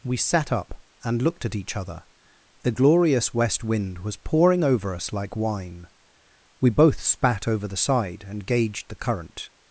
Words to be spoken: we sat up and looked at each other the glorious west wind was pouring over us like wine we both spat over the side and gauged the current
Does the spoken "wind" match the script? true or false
true